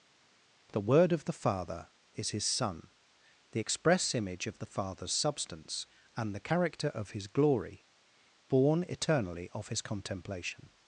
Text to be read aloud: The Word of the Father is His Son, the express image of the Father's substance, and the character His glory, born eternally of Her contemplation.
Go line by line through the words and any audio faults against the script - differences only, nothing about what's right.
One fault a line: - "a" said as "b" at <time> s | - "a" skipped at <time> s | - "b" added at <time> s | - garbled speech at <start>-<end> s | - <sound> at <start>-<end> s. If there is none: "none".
- "of" added at 6.9 s
- "Her" said as "His" at 9.7 s